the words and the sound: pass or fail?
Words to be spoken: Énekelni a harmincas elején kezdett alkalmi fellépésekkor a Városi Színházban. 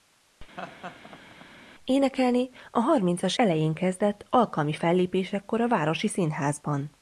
fail